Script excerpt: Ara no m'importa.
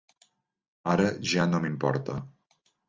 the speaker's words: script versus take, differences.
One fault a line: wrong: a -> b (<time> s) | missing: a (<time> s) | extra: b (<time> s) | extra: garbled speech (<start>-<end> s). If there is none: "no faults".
extra: ja (1.4 s)